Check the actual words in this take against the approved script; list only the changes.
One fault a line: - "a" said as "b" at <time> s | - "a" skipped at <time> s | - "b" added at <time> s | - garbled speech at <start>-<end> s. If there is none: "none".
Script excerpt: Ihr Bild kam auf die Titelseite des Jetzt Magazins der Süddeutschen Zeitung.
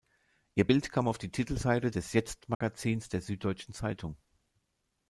none